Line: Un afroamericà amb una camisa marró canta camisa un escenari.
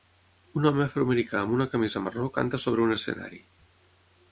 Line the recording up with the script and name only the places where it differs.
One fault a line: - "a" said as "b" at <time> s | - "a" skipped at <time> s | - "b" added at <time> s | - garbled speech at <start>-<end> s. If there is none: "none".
- "home" added at 0.7 s
- "camisa" said as "sobre" at 2.7 s